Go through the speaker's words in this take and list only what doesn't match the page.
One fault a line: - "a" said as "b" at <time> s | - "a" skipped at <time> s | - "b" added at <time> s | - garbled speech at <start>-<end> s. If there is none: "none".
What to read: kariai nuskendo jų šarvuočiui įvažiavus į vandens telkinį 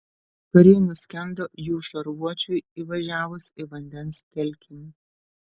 none